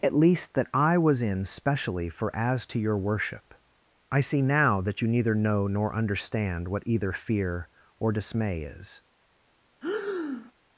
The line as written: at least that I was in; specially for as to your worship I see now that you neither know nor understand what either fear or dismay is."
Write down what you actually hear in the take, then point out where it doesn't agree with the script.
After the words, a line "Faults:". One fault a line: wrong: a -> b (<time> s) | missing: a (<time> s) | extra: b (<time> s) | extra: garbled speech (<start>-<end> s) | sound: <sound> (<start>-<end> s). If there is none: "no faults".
at least that I was in; specially for as to your worship I see now that you neither know nor understand what either fear or dismay is."
Faults:
sound: breath (9.8-10.5 s)